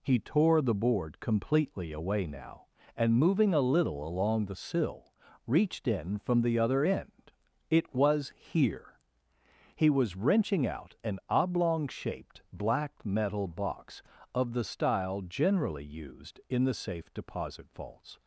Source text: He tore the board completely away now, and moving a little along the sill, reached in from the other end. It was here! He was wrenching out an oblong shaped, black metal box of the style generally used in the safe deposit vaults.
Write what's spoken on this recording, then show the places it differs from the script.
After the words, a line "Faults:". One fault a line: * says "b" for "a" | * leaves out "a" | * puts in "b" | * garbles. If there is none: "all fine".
He tore the board completely away now, and moving a little along the sill, reached in from the other end. It was here! He was wrenching out an oblong shaped, black metal box of the style generally used in the safe deposit vaults.
Faults:
all fine